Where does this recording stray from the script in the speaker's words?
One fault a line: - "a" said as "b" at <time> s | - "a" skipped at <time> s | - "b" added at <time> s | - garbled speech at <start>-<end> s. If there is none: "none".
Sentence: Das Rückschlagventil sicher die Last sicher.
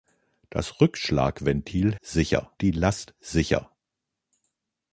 none